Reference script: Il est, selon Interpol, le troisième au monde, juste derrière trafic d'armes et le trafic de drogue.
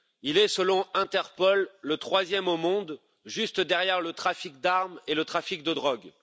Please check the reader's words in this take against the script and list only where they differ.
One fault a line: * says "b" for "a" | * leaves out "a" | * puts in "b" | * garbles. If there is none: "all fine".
* puts in "le"